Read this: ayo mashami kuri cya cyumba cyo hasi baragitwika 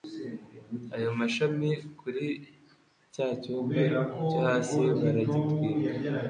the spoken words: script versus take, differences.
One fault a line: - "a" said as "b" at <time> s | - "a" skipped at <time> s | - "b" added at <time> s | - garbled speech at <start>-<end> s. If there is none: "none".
none